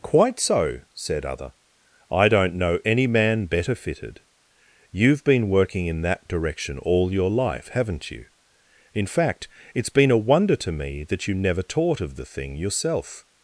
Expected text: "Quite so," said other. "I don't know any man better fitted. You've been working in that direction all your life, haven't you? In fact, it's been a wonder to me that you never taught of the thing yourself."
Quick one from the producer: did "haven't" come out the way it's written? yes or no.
yes